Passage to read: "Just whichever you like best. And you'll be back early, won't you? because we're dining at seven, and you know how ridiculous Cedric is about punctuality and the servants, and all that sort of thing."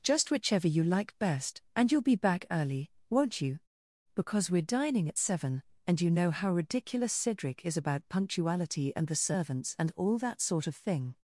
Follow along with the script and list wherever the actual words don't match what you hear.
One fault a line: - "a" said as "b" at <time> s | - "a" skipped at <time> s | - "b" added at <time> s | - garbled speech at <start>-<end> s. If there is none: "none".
none